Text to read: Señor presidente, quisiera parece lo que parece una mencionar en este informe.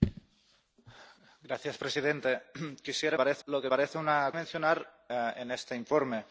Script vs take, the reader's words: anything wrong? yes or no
no